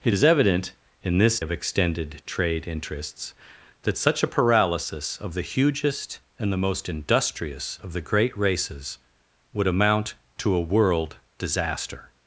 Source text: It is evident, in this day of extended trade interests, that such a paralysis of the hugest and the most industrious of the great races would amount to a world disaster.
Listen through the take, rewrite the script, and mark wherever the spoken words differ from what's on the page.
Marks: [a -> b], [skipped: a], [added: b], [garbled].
It is evident, in this [skipped: day] of extended trade interests, that such a paralysis of the hugest and the most industrious of the great races would amount to a world disaster.